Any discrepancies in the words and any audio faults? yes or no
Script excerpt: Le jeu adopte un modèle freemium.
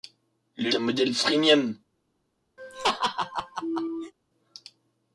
yes